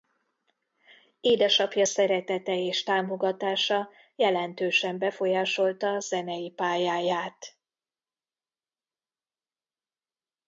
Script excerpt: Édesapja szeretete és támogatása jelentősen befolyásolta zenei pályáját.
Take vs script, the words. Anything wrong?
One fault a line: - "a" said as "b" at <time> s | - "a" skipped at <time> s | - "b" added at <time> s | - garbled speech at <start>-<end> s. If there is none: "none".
none